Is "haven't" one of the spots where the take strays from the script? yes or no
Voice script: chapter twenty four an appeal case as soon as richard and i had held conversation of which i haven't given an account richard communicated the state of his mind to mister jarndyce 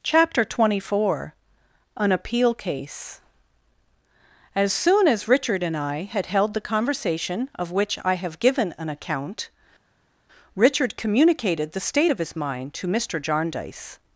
yes